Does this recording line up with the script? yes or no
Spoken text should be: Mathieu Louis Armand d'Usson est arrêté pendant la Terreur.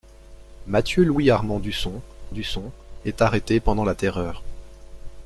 no